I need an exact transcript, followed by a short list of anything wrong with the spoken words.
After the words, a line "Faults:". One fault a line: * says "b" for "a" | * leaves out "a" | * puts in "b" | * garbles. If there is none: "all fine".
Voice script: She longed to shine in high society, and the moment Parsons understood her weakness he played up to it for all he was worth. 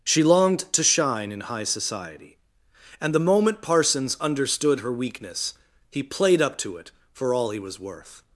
She longed to shine in high society, and the moment Parsons understood her weakness he played up to it for all he was worth.
Faults:
all fine